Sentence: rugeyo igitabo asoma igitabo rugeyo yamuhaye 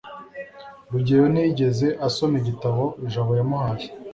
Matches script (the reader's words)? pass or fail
fail